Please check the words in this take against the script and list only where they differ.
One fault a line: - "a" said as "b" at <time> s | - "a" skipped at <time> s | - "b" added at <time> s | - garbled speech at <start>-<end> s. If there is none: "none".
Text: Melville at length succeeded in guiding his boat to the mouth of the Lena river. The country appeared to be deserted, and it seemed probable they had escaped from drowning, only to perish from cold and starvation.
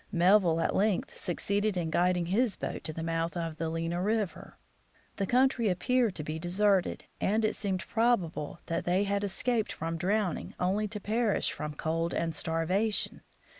- "that" added at 8.7 s